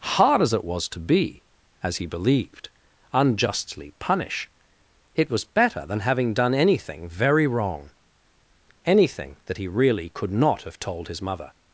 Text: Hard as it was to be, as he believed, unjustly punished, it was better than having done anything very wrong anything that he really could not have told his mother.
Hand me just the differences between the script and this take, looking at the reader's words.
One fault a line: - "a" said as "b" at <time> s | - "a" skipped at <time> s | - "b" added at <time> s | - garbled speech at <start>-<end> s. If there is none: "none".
- "punished" said as "punish" at 4.0 s